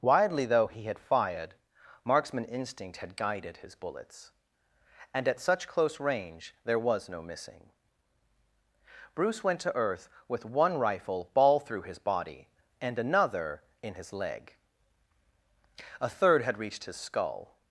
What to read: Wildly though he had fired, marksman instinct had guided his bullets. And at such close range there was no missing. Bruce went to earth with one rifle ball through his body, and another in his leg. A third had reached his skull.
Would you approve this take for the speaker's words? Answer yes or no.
no